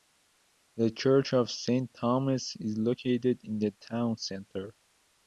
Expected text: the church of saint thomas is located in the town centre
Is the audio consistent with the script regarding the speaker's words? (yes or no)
yes